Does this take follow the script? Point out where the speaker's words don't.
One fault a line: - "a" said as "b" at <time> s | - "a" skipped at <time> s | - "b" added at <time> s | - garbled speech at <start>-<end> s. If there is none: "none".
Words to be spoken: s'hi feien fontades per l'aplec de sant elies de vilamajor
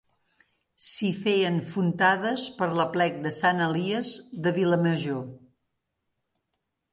none